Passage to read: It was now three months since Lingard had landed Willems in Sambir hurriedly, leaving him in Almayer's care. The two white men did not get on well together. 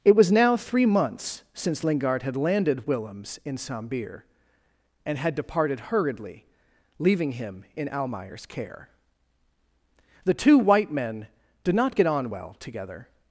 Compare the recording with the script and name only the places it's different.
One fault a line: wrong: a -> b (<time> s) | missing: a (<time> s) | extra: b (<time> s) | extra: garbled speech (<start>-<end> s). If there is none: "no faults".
extra: and had departed (5.1 s)